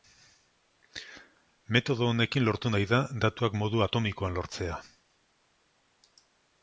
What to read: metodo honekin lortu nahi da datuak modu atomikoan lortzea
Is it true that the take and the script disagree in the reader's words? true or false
false